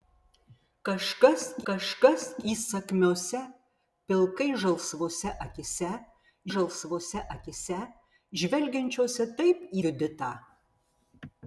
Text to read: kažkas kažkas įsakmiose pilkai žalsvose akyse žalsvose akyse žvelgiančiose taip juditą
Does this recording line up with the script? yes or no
yes